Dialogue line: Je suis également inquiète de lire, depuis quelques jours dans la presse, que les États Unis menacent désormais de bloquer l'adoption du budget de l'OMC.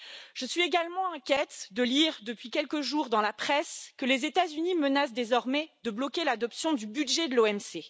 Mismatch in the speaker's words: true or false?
false